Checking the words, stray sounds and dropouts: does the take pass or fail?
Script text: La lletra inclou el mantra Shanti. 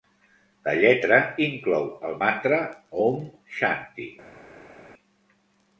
fail